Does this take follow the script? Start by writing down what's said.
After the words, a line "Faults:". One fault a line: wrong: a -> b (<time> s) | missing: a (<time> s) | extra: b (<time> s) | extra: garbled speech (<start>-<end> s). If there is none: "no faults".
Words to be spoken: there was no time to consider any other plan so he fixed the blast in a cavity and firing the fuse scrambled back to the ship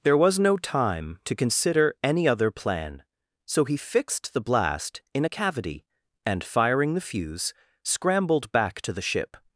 there was no time to consider any other plan so he fixed the blast in a cavity and firing the fuse scrambled back to the ship
Faults:
no faults